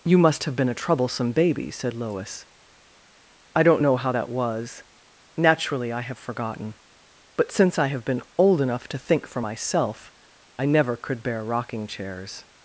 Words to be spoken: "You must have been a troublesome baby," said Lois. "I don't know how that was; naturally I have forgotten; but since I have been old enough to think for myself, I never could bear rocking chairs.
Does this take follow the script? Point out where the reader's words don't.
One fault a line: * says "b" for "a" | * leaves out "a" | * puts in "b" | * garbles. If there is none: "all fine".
all fine